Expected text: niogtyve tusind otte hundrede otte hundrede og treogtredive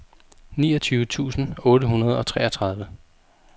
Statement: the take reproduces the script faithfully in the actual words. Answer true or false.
false